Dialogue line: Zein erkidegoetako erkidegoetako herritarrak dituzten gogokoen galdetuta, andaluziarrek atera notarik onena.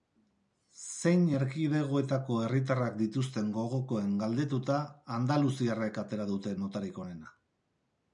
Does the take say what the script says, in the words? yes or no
no